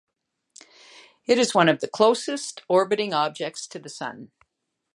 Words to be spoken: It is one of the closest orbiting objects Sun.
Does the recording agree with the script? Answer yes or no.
no